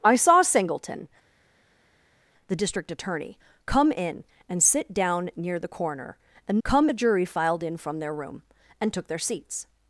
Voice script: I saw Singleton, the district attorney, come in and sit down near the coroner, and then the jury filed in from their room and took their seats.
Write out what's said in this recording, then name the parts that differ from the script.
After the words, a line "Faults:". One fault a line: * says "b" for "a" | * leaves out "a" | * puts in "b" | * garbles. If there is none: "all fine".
I saw Singleton, the district attorney, come in and sit down near the coroner, and come the jury filed in from their room and took their seats.
Faults:
* says "come" for "then"